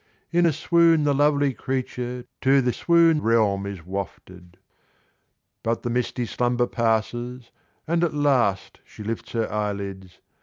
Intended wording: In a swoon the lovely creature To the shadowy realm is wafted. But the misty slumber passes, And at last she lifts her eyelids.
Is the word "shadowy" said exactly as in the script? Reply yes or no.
no